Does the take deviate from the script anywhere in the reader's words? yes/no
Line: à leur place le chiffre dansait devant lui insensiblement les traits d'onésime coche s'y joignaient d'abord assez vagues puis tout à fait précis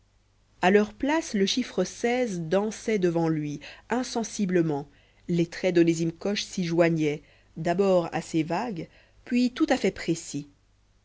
no